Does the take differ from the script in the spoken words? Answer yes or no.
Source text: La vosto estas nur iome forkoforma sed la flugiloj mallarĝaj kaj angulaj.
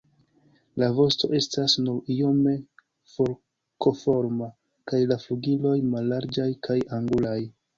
yes